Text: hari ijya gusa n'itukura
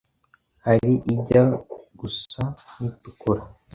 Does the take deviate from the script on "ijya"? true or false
false